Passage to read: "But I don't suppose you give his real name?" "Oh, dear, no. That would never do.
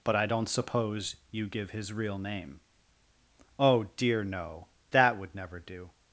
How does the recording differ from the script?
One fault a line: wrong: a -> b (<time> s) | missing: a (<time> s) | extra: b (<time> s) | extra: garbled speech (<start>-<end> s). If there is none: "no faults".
no faults